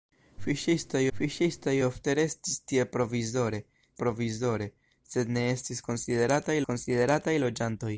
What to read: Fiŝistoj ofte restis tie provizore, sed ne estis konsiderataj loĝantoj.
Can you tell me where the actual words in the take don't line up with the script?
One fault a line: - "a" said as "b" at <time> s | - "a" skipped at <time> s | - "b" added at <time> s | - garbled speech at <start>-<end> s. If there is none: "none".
- "fiŝistoj" added at 1.2 s
- "provizore" added at 4.0 s
- "konsiderataj" added at 6.7 s